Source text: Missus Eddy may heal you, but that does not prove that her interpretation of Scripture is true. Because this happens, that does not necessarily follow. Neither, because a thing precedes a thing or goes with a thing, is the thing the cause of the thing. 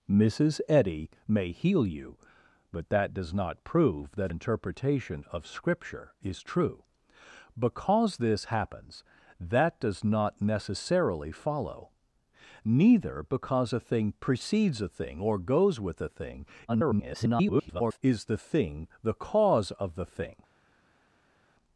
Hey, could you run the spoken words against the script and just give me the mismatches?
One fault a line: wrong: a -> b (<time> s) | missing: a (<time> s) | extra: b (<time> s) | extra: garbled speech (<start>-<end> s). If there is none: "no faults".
missing: her (4.3 s)
extra: garbled speech (16.7-18.0 s)